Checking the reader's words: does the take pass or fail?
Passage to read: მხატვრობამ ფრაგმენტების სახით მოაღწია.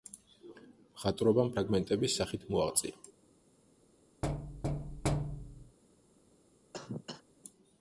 pass